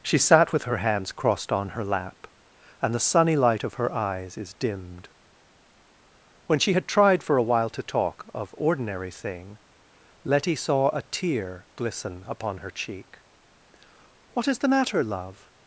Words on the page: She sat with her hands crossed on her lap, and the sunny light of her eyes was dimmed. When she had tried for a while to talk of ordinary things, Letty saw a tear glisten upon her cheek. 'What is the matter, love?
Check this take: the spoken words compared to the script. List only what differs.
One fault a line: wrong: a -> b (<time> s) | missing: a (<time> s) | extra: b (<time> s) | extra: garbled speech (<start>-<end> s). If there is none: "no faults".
wrong: was -> is (4.4 s)
wrong: things -> thing (9.1 s)